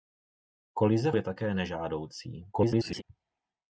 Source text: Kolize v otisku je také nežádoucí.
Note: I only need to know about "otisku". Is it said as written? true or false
false